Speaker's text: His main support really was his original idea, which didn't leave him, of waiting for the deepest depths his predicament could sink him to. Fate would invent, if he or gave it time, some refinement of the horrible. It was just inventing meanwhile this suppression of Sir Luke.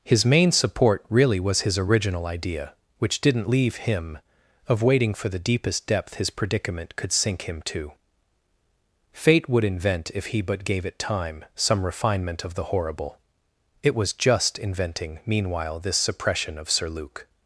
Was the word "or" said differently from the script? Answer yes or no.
yes